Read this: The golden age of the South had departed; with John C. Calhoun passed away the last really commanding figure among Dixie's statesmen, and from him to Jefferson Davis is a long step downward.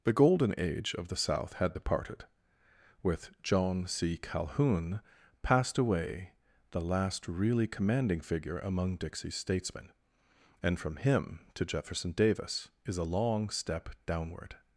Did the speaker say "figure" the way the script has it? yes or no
yes